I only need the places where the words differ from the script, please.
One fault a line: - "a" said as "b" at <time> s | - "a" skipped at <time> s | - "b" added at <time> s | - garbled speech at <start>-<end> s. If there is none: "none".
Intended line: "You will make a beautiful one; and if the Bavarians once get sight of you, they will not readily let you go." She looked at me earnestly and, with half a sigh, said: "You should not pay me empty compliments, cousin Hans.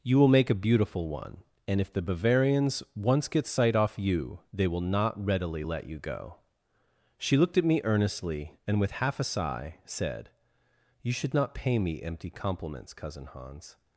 - "of" said as "off" at 3.8 s